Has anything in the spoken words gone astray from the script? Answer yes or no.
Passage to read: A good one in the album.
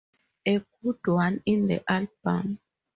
no